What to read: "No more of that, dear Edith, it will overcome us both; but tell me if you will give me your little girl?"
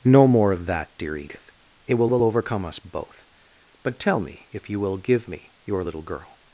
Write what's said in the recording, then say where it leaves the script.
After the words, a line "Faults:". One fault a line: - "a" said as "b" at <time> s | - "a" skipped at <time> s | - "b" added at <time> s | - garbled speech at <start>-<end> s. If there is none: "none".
"No more of that, dear Edith, it will will overcome us both; but tell me if you will give me your little girl?"
Faults:
- "will" added at 2.1 s